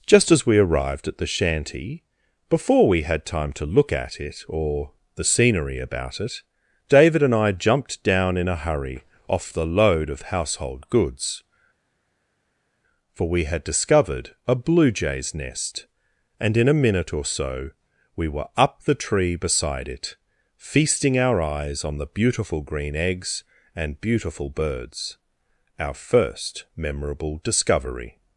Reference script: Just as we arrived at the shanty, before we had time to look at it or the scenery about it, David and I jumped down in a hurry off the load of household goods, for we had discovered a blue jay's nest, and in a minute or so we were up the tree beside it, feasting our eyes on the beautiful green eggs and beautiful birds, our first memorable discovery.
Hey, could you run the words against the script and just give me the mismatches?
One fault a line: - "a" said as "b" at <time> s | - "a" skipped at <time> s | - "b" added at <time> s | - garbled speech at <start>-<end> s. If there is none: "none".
none